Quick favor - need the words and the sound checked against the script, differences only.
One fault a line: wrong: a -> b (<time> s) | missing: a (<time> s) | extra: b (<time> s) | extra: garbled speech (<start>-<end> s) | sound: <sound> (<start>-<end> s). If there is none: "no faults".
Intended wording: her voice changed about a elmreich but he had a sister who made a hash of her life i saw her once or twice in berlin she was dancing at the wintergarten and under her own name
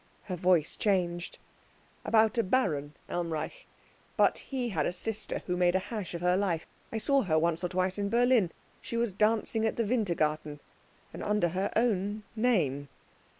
extra: baron (2.4 s)